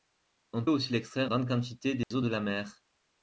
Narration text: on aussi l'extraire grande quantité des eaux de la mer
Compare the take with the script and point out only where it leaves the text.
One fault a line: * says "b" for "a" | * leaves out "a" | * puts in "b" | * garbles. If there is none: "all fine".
all fine